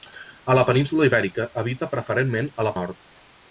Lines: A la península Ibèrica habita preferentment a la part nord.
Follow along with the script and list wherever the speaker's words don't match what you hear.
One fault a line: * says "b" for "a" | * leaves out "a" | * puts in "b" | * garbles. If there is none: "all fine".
* leaves out "part"